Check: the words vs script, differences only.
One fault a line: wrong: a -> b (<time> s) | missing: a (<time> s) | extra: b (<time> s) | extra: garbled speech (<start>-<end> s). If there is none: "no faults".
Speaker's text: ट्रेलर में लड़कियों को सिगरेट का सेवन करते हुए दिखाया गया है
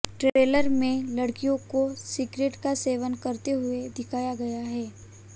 no faults